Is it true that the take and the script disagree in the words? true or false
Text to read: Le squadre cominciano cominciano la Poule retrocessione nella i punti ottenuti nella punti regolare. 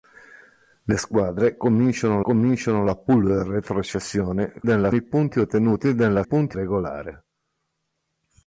false